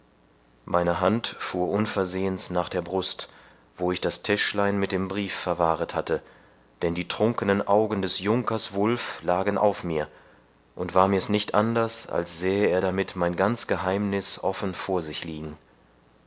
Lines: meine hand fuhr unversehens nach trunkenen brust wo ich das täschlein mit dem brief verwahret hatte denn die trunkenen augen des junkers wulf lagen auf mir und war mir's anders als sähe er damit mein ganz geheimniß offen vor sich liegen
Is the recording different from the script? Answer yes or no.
yes